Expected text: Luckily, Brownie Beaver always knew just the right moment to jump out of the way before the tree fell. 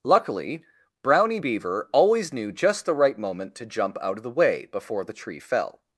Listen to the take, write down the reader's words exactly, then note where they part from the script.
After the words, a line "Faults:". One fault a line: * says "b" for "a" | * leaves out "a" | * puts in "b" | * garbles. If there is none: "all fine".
Luckily, Brownie Beaver always knew just the right moment to jump out of the way before the tree fell.
Faults:
all fine